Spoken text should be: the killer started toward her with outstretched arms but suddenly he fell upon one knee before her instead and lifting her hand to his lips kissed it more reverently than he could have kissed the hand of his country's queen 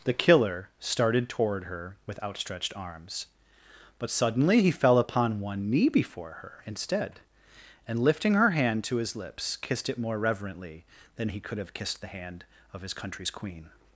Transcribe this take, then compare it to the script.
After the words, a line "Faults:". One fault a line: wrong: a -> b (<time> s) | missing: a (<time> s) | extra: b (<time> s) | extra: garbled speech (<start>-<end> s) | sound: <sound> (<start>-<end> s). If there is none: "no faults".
the killer started toward her with outstretched arms but suddenly he fell upon one knee before her instead and lifting her hand to his lips kissed it more reverently than he could have kissed the hand of his country's queen
Faults:
no faults